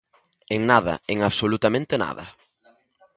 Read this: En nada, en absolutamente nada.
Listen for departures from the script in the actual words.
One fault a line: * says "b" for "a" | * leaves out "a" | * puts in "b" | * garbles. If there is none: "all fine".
all fine